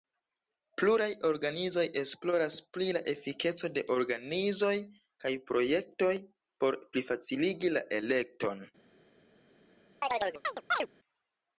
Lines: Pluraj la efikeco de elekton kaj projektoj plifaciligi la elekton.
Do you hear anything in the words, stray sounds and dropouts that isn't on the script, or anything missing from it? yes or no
yes